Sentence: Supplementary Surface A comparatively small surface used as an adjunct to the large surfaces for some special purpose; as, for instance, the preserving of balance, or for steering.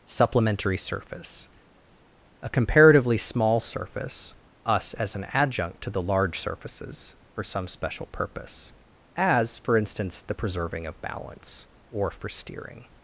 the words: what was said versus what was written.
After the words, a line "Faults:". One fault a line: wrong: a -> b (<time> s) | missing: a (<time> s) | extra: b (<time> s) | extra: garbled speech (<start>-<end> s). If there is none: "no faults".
Supplementary Surface A comparatively small surface us as an adjunct to the large surfaces for some special purpose; as, for instance, the preserving of balance, or for steering.
Faults:
wrong: used -> us (4.7 s)